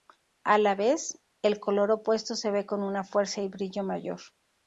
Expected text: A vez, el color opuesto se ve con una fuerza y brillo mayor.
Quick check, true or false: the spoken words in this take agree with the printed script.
false